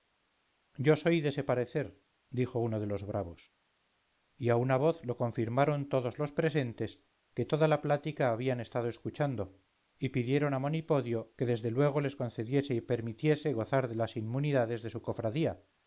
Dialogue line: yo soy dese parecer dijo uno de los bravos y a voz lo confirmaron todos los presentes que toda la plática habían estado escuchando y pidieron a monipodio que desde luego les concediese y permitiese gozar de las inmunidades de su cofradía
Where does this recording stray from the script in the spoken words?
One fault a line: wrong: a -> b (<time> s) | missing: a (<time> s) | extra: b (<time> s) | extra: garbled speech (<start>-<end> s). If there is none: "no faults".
extra: una (4.5 s)